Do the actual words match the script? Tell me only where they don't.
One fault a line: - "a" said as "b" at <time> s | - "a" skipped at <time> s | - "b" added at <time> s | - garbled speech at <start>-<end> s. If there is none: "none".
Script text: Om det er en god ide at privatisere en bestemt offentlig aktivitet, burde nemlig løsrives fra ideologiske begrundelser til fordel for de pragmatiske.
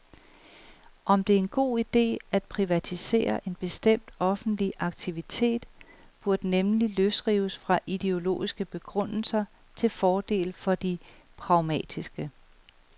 none